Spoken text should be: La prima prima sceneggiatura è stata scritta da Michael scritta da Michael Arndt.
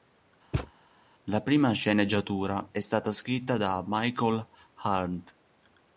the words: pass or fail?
fail